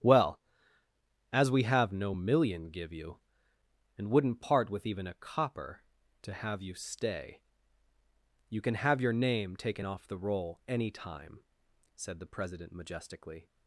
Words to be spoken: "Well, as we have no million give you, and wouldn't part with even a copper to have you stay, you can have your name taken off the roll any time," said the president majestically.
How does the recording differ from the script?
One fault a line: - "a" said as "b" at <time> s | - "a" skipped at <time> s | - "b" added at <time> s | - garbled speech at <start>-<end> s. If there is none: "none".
none